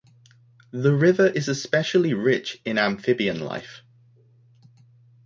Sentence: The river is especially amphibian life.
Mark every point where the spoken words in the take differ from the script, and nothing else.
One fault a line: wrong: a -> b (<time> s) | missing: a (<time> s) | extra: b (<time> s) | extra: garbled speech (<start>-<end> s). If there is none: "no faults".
extra: rich in (2.1 s)